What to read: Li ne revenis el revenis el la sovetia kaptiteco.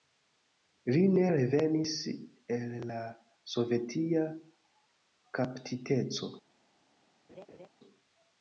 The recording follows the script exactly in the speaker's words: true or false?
false